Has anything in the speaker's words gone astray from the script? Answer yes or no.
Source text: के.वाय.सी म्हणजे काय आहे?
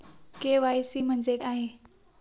yes